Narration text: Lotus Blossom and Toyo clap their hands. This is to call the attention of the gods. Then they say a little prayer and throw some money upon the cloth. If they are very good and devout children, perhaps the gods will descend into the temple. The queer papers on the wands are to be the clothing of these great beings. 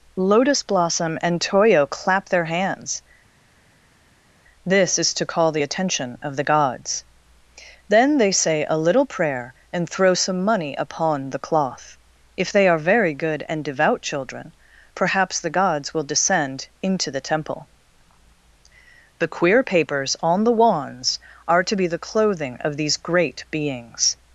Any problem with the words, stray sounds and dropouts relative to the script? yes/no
no